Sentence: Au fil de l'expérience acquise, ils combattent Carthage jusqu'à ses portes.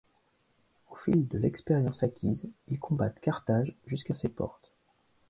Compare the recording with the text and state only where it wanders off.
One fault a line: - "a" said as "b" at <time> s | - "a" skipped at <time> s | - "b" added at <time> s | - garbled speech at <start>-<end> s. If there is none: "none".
none